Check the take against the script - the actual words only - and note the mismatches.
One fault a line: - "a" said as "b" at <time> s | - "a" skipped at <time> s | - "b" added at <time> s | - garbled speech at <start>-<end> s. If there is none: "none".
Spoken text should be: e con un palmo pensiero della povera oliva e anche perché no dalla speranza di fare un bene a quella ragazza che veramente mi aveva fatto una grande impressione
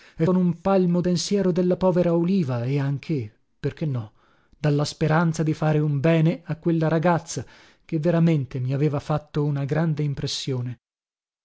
none